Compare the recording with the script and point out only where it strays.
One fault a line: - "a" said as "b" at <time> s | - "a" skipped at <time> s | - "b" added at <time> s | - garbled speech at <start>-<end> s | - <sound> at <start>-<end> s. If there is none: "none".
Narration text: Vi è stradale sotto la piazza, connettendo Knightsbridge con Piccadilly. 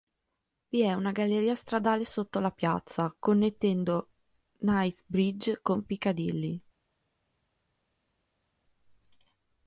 - "una galleria" added at 0.9 s